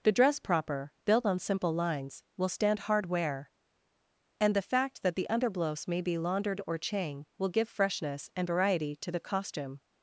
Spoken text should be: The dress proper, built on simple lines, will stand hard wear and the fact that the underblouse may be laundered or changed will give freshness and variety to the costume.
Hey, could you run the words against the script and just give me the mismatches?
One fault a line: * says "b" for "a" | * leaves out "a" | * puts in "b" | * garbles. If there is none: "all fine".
* says "chang" for "changed"